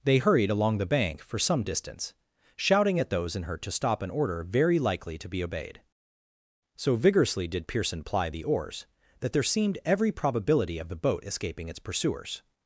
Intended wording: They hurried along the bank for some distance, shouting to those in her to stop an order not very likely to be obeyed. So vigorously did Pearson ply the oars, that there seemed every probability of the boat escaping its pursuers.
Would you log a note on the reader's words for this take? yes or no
yes